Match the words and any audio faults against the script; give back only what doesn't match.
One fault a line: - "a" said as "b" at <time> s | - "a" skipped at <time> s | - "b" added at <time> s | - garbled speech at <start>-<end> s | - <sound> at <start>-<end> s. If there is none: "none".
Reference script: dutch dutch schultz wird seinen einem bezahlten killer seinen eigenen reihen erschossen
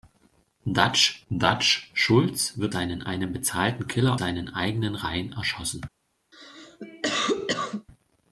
- cough at 6.3-7.9 s